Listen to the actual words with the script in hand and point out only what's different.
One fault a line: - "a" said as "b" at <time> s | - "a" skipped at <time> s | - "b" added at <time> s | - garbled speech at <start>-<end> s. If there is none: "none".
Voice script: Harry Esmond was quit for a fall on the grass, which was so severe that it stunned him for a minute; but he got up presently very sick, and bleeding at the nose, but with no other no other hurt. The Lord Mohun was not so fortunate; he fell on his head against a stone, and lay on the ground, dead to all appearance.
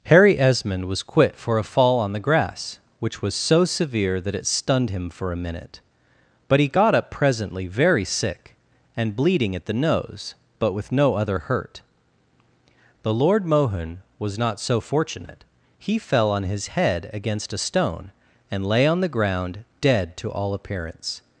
- "no other" skipped at 11.4 s